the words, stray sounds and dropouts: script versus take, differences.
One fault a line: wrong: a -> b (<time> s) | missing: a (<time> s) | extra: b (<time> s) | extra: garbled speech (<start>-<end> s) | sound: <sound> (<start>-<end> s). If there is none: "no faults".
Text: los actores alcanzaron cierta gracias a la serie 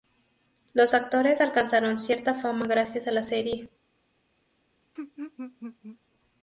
extra: fama (2.3 s)
sound: laugh (5.0-6.0 s)